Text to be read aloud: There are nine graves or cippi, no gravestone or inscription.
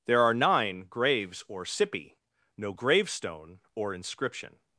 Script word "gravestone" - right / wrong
right